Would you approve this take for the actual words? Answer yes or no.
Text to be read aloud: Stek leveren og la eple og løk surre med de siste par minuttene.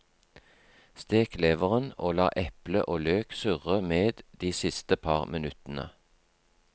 yes